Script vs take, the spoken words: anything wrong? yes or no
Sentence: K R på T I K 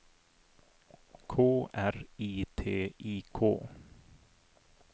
yes